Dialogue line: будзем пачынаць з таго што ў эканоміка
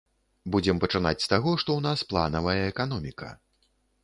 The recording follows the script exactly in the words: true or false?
false